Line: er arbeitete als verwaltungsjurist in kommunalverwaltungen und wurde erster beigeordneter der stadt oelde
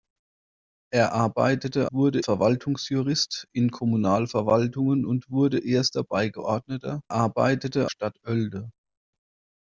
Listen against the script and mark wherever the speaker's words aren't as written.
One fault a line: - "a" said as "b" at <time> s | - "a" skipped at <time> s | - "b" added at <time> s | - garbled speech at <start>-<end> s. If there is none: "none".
- "als" said as "wurde" at 1.9 s
- "der" said as "arbeitete" at 7.1 s